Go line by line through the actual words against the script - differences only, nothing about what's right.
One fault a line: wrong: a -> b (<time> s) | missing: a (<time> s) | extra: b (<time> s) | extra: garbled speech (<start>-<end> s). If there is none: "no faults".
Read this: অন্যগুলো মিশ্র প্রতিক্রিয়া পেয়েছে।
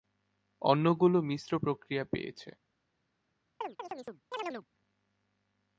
no faults